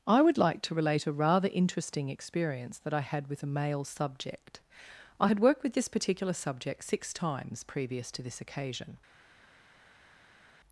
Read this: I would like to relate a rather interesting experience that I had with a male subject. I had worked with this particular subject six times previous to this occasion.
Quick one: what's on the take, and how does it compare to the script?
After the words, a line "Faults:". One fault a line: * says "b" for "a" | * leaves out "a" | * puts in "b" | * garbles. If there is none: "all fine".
I would like to relate a rather interesting experience that I had with a male subject. I had worked with this particular subject six times previous to this occasion.
Faults:
all fine